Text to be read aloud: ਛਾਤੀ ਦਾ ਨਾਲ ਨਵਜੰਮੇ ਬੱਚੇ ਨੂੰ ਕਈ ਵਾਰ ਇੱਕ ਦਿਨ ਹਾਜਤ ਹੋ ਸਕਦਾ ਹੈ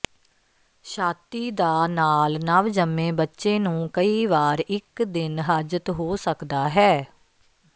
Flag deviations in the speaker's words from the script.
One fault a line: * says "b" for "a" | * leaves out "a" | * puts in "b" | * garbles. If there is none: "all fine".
all fine